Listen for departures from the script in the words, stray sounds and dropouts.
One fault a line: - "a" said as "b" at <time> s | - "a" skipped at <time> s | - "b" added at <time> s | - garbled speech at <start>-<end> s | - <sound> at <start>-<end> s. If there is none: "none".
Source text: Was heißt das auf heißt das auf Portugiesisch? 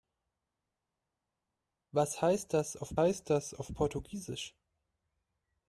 none